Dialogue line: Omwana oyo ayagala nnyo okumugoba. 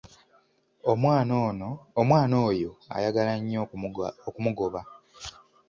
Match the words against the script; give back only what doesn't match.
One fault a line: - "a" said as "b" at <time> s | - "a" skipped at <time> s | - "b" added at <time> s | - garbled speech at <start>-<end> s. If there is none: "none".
none